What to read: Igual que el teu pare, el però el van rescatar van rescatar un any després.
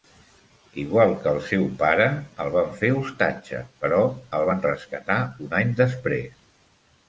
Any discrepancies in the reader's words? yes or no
yes